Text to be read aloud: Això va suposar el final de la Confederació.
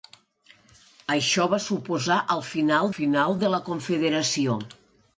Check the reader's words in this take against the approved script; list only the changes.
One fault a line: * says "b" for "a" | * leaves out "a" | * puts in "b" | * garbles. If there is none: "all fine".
* puts in "final"